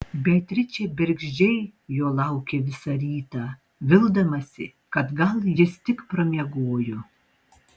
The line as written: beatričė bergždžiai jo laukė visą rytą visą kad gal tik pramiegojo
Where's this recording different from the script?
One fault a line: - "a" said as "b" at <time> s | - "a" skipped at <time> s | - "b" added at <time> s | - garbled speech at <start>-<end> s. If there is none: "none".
- "visą" said as "vildamasi" at 3.9 s
- "jis" added at 5.6 s